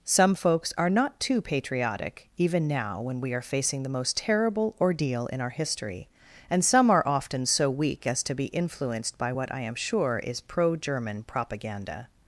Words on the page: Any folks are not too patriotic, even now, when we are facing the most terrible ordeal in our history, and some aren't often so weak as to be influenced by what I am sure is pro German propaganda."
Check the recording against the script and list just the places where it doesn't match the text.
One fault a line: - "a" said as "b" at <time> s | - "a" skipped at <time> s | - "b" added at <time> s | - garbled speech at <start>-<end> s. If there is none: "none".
- "Any" said as "Some" at 0.1 s
- "aren't" said as "are" at 6.9 s